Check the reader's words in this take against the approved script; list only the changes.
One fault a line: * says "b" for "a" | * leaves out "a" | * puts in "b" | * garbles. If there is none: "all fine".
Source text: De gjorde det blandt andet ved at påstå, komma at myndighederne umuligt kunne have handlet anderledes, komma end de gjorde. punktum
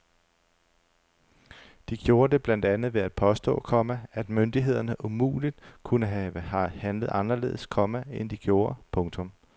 all fine